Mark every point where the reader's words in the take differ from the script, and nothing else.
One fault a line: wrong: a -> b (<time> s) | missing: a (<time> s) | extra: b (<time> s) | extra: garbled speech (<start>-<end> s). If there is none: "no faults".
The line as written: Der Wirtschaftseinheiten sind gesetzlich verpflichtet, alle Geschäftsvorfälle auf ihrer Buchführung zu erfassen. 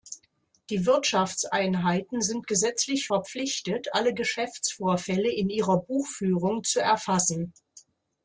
wrong: Der -> Die (0.7 s)
wrong: auf -> in (5.3 s)